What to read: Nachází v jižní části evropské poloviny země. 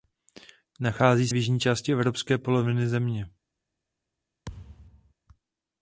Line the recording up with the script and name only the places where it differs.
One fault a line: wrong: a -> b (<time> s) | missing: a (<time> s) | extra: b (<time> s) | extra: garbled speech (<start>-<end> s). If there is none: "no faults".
no faults